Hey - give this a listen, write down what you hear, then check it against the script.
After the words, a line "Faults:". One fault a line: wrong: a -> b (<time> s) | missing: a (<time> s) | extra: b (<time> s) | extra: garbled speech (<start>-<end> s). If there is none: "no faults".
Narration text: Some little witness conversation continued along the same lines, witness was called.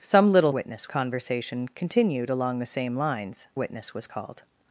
Some little witness conversation continued along the same lines, witness was called.
Faults:
no faults